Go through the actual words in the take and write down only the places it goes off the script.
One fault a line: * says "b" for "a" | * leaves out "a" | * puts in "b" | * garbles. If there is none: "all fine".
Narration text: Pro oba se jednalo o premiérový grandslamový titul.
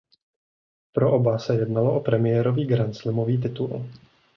all fine